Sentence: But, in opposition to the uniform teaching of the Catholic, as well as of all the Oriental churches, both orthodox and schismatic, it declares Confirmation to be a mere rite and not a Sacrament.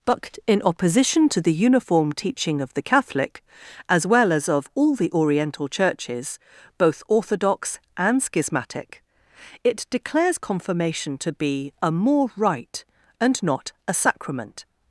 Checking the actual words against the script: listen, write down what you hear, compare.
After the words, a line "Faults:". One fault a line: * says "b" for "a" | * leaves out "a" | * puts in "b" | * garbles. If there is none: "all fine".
But, in opposition to the uniform teaching of the Catholic, as well as of all the Oriental churches, both orthodox and schismatic, it declares Confirmation to be a more rite and not a Sacrament.
Faults:
* says "more" for "mere"